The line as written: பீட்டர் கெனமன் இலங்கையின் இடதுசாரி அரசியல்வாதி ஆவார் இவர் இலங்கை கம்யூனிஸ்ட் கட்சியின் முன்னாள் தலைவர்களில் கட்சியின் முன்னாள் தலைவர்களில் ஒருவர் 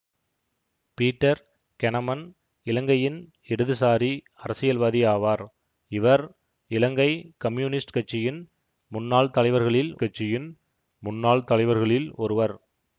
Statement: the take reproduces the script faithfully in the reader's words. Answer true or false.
true